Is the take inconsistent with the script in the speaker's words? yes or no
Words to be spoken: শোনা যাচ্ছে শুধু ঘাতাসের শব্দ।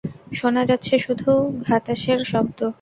no